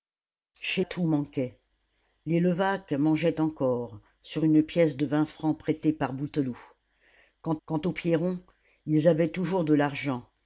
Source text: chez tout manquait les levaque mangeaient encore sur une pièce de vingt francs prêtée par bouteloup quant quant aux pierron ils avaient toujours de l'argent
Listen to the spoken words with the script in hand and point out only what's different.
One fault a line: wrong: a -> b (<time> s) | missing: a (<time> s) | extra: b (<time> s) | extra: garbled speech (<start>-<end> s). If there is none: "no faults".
no faults